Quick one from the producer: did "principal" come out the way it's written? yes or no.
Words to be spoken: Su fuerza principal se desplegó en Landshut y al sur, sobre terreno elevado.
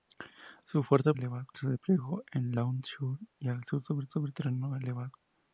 no